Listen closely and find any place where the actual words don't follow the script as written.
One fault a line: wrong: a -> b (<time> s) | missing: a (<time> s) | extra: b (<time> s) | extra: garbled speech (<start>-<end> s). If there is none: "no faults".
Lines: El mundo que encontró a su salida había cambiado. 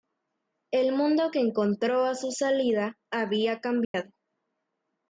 no faults